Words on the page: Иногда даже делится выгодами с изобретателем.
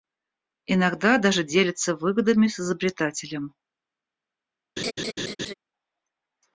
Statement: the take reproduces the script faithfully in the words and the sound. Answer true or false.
false